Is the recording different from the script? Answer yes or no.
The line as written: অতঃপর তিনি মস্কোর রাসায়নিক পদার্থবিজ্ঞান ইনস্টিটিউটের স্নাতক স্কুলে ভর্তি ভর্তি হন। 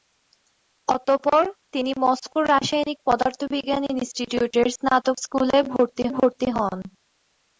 no